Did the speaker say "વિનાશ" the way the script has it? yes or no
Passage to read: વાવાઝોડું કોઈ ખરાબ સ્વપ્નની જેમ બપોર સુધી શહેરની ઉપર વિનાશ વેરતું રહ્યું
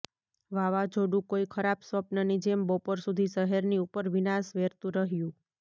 yes